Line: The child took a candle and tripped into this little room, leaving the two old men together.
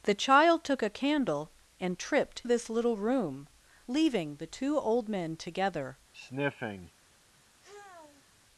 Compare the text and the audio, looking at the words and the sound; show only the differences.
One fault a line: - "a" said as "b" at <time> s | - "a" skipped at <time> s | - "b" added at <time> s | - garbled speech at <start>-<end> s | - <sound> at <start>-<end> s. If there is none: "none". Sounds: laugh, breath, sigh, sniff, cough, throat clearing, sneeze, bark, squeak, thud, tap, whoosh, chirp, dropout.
- "into" skipped at 2.4 s
- sniff at 6.1-6.9 s
- sigh at 7.6-8.3 s